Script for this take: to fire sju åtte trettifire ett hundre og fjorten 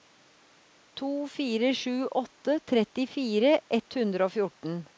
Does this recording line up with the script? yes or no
yes